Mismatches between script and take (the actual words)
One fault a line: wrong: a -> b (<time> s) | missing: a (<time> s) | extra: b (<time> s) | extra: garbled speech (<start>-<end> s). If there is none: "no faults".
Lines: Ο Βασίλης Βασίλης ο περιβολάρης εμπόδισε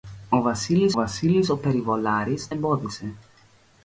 no faults